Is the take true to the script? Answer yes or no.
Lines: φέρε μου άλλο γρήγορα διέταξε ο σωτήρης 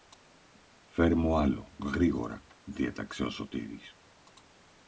yes